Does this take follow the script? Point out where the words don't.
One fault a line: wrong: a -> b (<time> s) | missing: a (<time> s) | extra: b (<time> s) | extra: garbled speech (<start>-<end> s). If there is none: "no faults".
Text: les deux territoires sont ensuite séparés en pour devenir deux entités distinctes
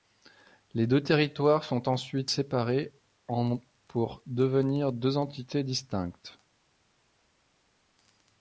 no faults